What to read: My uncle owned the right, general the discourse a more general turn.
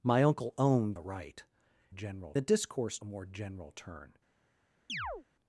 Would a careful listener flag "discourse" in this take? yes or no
no